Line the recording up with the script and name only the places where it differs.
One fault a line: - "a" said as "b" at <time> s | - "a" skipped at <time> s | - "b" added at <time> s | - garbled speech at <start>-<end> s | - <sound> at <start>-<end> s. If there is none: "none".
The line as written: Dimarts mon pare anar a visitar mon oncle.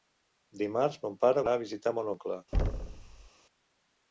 - thud at 2.5-3.3 s